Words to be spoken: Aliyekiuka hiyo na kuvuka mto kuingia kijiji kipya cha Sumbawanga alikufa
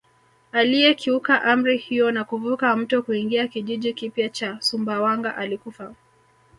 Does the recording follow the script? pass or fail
fail